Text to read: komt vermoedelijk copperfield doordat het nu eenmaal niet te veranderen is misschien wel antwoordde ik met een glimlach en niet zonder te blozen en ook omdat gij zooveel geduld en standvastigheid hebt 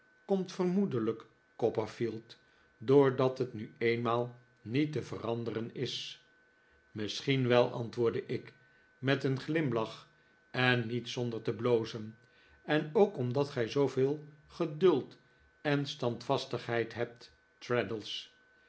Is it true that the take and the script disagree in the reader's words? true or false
false